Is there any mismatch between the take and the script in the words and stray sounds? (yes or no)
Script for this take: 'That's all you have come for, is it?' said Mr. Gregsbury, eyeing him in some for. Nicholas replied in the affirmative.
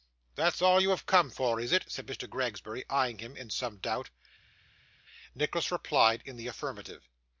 yes